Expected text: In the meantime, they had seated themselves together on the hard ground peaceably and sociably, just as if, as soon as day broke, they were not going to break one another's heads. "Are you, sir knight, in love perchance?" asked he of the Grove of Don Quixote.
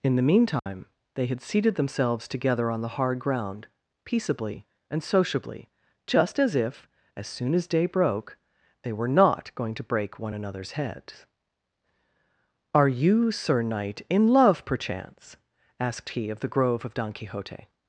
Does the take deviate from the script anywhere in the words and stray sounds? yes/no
yes